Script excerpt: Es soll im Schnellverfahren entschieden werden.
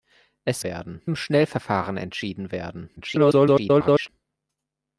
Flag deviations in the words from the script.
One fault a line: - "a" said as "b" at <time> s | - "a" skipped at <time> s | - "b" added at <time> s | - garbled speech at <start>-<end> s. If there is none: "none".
- "soll" said as "werden" at 0.6 s
- garbled speech at 3.0-4.1 s